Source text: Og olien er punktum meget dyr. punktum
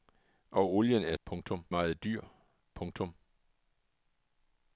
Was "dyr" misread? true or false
false